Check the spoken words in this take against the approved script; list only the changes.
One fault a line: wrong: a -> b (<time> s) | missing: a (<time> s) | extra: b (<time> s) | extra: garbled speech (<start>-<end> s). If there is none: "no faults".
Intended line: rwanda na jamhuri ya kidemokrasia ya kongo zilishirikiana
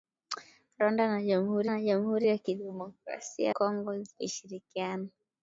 extra: na jamhuri (1.7 s)
missing: ya (3.5 s)